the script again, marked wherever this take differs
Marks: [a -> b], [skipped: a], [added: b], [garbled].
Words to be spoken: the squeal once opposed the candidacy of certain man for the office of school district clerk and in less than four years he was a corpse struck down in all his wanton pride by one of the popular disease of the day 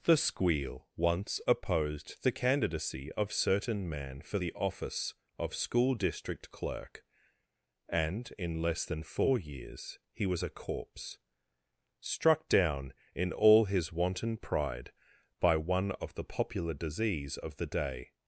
the squeal once opposed the candidacy of certain man for the office of school district clerk and in less than four years he was a corpse struck down in all his wanton pride by one of the popular disease of the day